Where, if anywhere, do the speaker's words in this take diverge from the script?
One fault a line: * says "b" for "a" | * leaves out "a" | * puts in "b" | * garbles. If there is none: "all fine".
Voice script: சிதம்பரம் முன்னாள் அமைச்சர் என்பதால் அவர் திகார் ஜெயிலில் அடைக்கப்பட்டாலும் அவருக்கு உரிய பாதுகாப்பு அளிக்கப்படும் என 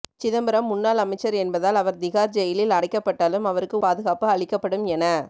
* leaves out "உரிய"